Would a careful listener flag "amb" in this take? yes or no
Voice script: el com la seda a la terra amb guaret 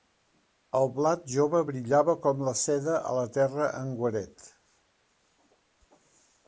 yes